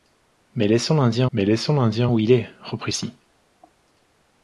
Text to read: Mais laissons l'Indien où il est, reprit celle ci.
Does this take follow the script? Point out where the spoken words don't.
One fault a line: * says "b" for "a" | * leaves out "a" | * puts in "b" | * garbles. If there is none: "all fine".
* puts in "mais laissons l'Indien"
* leaves out "celle"